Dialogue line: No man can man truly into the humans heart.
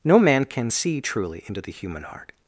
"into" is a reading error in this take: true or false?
false